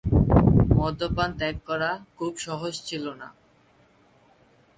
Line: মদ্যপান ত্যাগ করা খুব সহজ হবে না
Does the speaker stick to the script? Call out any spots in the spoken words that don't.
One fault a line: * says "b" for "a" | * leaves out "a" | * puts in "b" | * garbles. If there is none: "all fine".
* says "ছিল" for "হবে"